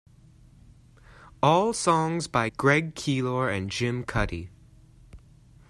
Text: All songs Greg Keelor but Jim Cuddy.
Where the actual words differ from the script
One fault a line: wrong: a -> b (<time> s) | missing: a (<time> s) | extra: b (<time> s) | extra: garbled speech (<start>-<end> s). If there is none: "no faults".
extra: by (2.3 s)
wrong: but -> and (3.5 s)